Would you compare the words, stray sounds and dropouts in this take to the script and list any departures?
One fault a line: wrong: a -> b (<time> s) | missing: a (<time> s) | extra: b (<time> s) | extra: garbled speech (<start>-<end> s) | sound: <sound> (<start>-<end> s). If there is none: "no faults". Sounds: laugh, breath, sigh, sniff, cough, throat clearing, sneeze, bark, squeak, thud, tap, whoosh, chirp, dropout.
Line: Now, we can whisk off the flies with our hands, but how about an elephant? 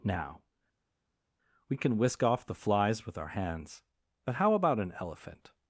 no faults